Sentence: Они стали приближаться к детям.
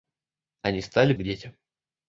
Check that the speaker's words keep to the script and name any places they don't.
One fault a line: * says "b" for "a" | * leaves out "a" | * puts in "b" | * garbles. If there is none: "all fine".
* leaves out "приближаться"